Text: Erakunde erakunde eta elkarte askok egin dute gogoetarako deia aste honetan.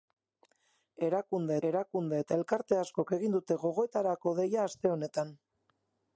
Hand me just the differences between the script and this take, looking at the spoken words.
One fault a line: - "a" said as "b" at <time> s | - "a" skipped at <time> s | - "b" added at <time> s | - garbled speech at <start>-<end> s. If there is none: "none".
none